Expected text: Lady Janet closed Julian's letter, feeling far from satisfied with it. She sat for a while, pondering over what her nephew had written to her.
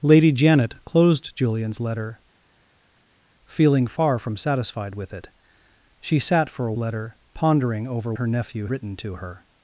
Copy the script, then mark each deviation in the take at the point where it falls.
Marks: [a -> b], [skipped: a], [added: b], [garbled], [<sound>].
Lady Janet closed Julian's letter, feeling far from satisfied with it. She sat for a [while, -> letter] pondering over [skipped: what] her nephew [skipped: had] written to her.